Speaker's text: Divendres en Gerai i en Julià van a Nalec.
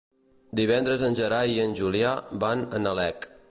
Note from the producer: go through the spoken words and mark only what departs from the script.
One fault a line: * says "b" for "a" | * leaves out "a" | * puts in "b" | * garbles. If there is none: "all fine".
all fine